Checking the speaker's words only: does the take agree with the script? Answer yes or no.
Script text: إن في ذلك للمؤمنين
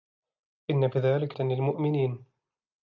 yes